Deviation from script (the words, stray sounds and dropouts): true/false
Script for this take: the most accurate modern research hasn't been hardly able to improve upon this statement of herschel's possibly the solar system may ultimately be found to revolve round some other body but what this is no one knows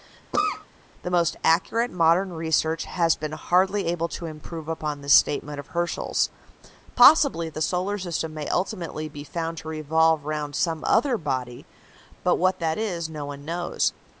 true